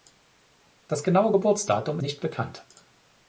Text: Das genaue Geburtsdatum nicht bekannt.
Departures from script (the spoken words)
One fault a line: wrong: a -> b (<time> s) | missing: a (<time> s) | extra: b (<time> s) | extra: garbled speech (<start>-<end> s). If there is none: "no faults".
no faults